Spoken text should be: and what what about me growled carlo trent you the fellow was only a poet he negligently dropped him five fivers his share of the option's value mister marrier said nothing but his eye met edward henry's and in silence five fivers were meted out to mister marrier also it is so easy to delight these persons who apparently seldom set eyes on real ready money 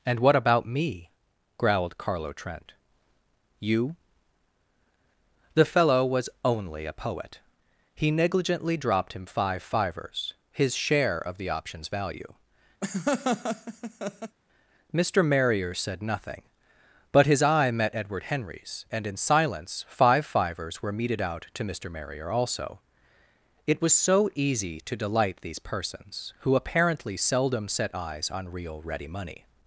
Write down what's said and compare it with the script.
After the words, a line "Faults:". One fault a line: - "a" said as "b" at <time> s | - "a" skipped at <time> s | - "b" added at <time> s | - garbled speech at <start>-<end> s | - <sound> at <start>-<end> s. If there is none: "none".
and what about me growled carlo trent you the fellow was only a poet he negligently dropped him five fivers his share of the option's value mister marrier said nothing but his eye met edward henry's and in silence five fivers were meted out to mister marrier also it was so easy to delight these persons who apparently seldom set eyes on real ready money
Faults:
- "what" skipped at 0.3 s
- laugh at 12.8-14.4 s
- "is" said as "was" at 23.8 s